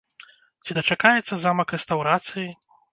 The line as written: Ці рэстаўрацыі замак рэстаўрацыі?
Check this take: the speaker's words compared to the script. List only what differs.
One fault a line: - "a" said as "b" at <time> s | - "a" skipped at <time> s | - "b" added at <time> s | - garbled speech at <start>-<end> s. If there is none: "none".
- "рэстаўрацыі" said as "дачакаецца" at 0.8 s